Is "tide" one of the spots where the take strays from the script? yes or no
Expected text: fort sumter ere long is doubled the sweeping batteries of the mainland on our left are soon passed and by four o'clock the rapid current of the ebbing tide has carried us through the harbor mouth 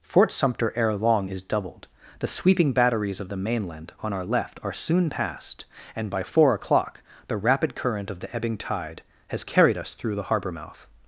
no